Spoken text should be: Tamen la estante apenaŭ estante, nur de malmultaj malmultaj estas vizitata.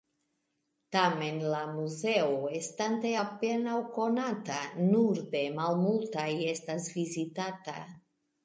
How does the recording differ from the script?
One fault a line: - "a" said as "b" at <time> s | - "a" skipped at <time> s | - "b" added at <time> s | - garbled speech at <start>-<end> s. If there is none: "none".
- "muzeo" added at 1.7 s
- "estante" said as "konata" at 4.0 s
- "malmultaj" skipped at 6.3 s